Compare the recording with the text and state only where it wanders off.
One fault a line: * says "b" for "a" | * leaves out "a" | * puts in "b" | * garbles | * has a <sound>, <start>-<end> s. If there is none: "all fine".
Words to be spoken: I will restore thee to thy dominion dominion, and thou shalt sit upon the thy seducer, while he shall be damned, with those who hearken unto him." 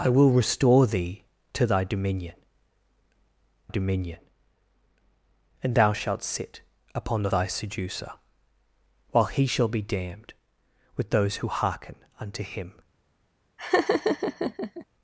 * has a laugh, 13.6-14.9 s